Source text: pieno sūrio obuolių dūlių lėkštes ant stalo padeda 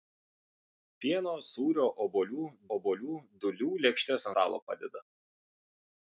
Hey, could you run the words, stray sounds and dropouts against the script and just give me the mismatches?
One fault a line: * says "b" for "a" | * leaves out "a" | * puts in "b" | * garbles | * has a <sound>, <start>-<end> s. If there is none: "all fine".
* puts in "obuolių"
* leaves out "ant"